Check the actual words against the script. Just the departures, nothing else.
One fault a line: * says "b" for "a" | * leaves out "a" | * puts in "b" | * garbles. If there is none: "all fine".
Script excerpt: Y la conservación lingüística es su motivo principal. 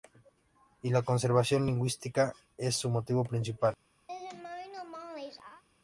all fine